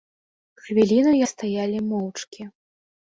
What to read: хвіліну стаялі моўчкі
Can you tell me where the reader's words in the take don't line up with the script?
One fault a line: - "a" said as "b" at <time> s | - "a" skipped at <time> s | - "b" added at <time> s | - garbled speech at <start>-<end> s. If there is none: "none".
none